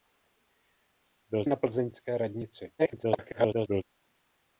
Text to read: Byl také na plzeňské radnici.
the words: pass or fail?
fail